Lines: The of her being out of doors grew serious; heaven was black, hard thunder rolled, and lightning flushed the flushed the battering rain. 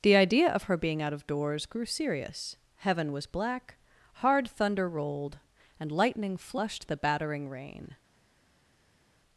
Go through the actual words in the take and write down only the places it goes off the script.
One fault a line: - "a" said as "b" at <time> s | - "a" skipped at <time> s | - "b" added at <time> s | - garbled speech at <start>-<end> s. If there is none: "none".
- "idea" added at 0.1 s
- "flushed the" skipped at 7.0 s